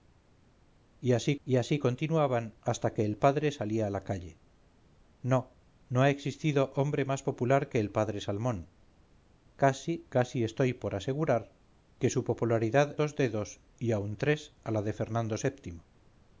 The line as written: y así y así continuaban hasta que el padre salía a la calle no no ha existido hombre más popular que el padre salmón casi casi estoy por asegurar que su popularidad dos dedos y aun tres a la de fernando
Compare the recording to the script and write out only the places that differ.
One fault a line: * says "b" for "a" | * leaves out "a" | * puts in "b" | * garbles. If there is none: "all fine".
all fine